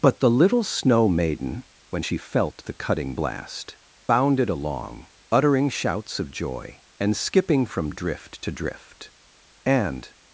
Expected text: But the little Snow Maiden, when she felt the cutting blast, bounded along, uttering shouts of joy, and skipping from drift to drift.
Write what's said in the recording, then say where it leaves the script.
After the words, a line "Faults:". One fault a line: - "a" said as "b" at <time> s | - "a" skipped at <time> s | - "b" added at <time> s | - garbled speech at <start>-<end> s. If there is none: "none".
But the little Snow Maiden, when she felt the cutting blast, bounded along, uttering shouts of joy, and skipping from drift to drift. And
Faults:
- "And" added at 9.6 s